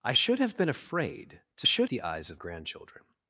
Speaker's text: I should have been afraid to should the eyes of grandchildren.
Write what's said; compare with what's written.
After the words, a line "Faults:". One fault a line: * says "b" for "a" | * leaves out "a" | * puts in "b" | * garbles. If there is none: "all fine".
I should have been afraid to should the eyes of grandchildren.
Faults:
all fine